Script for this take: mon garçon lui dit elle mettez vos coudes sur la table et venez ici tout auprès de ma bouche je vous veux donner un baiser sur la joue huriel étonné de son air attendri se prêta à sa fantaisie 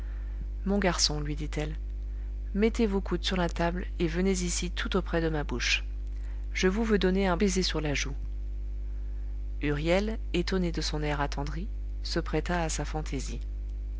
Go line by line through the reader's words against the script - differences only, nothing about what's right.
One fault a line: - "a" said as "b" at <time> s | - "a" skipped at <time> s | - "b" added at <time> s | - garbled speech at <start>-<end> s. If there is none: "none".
none